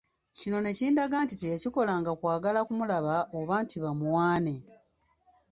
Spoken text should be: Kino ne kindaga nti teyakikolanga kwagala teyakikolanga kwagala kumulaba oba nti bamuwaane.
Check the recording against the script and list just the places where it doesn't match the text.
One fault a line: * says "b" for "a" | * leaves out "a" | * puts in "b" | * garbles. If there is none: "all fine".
* leaves out "teyakikolanga kwagala"